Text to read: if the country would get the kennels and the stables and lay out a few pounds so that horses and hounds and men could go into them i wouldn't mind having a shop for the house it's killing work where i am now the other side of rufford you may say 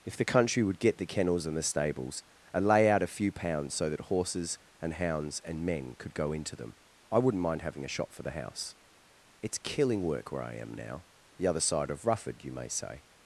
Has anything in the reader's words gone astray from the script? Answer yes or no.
no